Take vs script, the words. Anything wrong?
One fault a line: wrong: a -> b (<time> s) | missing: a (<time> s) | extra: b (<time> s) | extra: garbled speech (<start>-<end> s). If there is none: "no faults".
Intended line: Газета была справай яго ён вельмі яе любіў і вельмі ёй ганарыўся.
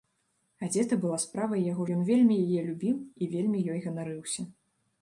no faults